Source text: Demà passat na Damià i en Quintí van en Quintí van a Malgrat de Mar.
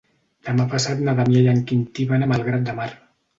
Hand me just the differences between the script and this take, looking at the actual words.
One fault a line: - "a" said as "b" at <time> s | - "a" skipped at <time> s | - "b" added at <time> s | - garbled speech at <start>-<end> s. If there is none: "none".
- "en Quintí van" skipped at 2.3 s